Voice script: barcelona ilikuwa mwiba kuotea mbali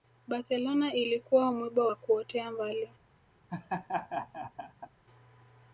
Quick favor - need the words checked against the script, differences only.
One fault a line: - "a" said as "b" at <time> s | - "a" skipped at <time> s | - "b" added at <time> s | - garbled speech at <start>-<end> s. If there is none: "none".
- "wa" added at 1.8 s